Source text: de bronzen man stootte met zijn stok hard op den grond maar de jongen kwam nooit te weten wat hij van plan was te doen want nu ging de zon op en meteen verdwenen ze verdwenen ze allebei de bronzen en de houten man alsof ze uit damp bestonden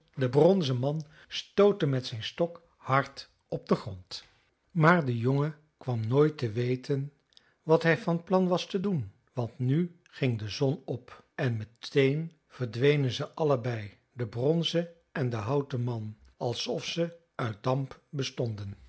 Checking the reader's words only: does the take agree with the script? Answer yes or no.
no